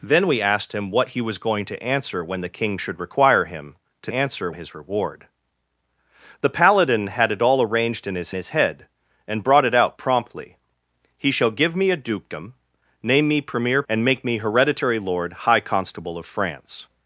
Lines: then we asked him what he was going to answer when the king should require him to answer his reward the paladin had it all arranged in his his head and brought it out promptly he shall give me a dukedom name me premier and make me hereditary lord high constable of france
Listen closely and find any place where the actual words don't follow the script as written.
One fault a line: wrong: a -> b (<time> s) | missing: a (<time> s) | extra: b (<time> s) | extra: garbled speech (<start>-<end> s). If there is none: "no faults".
no faults